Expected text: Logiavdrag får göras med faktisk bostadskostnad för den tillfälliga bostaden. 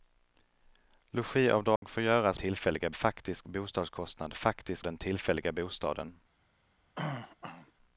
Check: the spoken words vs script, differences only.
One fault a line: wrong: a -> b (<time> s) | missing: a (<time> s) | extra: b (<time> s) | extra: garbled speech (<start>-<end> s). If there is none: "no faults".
wrong: med -> tillfälliga (2.3 s)
wrong: för -> faktisk (4.3 s)